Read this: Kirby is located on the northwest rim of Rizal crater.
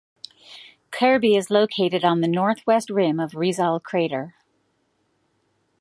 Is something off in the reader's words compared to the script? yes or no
no